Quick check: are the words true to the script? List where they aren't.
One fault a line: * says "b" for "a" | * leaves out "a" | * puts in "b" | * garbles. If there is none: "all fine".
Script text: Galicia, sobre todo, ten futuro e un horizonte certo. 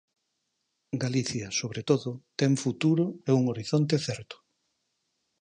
all fine